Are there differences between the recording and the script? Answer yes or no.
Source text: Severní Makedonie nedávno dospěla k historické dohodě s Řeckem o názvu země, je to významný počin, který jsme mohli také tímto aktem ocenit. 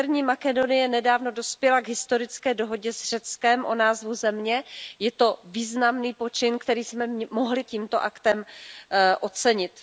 yes